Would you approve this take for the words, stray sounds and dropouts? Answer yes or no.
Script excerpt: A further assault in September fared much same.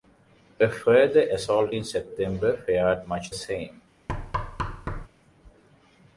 no